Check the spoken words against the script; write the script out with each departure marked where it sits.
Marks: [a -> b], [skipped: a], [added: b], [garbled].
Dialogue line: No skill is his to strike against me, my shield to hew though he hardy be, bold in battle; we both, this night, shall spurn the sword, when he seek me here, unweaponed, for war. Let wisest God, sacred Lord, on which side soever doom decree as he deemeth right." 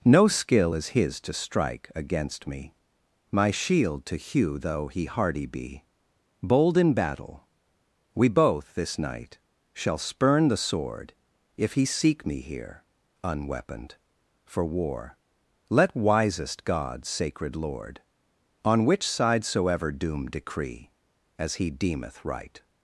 No skill is his to strike against me, my shield to hew though he hardy be, bold in battle; we both, this night, shall spurn the sword, [when -> if] he seek me here, unweaponed, for war. Let wisest God, sacred Lord, on which side soever doom decree as he deemeth right."